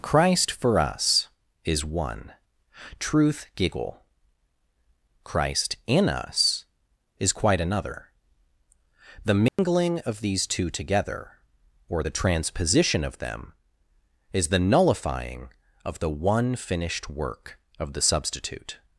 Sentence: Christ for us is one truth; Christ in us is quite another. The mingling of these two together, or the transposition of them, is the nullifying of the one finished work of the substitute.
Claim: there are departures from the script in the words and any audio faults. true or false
true